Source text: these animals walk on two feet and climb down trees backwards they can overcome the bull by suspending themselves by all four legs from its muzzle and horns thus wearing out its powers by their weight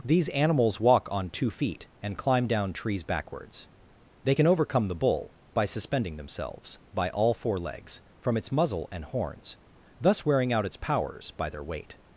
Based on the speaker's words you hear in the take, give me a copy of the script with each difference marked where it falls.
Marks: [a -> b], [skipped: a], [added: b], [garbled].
these animals walk on two feet and climb down trees backwards they can overcome the bull by suspending themselves by all four legs from its muzzle and horns thus wearing out its powers by their weight